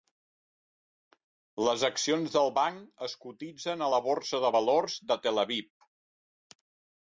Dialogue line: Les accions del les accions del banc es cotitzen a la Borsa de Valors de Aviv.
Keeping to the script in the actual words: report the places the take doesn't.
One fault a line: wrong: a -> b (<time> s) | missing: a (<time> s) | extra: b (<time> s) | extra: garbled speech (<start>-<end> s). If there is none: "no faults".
missing: les accions del (2.5 s)
extra: Tel (5.3 s)